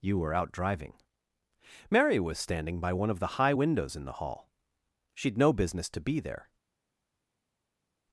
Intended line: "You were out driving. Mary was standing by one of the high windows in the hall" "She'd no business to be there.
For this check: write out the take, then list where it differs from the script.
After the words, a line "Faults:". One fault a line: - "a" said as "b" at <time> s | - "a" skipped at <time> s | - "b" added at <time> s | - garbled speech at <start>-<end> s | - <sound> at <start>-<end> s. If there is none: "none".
"You were out driving. Mary was standing by one of the high windows in the hall" "She'd no business to be there.
Faults:
none